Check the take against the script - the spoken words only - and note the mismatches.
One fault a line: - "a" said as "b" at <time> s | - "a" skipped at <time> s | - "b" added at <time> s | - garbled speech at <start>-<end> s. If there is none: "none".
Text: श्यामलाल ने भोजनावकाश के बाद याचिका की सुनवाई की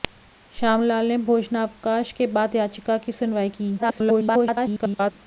- garbled speech at 3.8-5.1 s